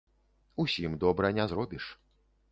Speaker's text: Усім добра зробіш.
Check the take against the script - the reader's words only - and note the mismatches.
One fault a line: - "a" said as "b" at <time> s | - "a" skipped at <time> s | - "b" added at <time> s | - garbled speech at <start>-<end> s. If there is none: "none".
- "не" added at 1.3 s